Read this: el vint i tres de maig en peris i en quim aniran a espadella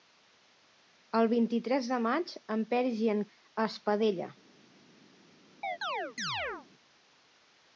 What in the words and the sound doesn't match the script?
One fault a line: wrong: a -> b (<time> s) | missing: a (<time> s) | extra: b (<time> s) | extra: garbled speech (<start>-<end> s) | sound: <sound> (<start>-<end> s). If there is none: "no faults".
missing: quim aniran (3.2 s)
sound: chirp (5.6-6.7 s)